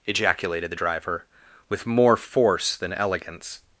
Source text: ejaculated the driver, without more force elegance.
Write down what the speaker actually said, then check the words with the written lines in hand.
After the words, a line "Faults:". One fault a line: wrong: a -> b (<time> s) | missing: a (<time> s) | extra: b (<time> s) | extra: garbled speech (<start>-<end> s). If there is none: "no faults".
ejaculated the driver, with more force than elegance.
Faults:
wrong: without -> with (1.7 s)
extra: than (2.8 s)